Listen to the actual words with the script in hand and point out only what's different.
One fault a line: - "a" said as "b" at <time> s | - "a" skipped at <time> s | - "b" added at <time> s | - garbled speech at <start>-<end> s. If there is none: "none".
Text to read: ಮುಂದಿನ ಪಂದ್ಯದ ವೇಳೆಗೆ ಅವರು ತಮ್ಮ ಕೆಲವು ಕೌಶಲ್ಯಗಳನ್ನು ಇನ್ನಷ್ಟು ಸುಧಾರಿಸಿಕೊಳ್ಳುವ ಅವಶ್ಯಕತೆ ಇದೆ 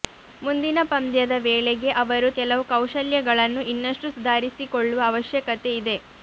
- "ತಮ್ಮ" skipped at 2.3 s